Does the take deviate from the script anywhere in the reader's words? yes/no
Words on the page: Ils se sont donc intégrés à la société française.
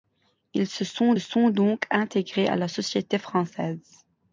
yes